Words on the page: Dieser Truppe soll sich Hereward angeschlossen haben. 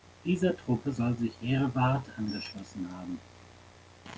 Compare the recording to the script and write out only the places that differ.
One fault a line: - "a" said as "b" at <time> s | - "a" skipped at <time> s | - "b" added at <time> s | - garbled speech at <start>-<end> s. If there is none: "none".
none